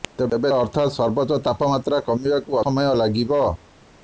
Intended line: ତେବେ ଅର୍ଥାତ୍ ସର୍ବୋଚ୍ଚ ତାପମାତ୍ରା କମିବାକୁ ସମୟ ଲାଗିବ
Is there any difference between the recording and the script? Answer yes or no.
no